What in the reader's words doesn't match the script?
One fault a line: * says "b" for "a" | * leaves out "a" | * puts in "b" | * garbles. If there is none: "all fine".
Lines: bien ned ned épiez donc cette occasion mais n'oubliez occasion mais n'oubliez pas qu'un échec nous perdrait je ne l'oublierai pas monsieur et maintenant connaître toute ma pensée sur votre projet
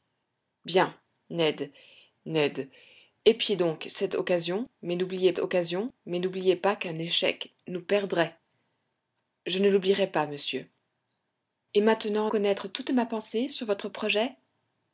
all fine